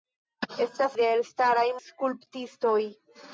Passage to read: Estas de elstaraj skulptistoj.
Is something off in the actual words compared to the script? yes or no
no